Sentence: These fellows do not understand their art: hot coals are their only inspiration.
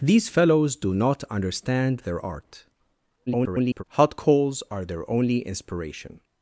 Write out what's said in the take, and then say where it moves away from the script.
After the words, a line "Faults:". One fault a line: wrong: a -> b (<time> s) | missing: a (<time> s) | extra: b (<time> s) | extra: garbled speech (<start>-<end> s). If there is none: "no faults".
These fellows do not understand their art: [garbled] hot coals are their only inspiration.
Faults:
extra: garbled speech (3.3-3.8 s)